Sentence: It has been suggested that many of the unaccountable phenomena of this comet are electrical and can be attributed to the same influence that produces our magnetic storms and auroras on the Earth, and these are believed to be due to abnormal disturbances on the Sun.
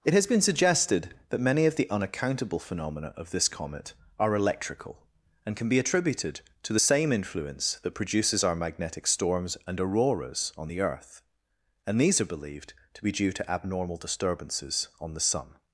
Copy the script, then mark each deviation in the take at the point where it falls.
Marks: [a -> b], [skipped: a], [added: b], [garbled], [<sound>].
It has been suggested that many of the unaccountable phenomena of this comet are electrical and can be attributed to the same influence that produces our magnetic storms and auroras on the Earth, and these are believed to be due to abnormal disturbances on the Sun.